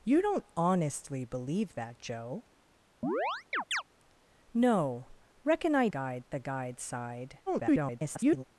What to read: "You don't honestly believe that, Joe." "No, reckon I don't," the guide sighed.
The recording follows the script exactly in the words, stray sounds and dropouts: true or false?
false